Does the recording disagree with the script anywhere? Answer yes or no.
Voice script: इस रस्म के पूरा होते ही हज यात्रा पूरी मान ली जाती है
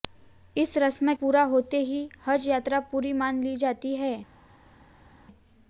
yes